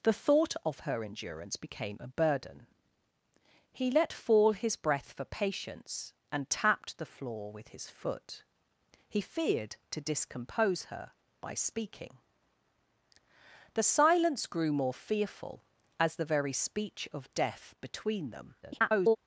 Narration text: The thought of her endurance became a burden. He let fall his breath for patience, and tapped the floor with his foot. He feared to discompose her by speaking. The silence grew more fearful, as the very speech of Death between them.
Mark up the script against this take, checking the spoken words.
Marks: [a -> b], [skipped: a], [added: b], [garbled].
The thought of her endurance became a burden. He let fall his breath for patience, and tapped the floor with his foot. He feared to discompose her by speaking. The silence grew more fearful, as the very speech of Death between them. [garbled]